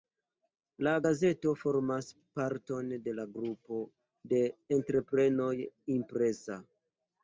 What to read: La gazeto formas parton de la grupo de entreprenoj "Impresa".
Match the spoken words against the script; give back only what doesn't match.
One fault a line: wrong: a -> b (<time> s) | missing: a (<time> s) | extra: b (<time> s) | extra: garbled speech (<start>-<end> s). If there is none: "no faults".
no faults